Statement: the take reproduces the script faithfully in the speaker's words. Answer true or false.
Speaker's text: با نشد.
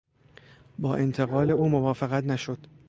false